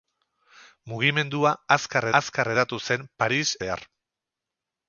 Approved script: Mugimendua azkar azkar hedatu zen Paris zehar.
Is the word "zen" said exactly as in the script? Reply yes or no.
yes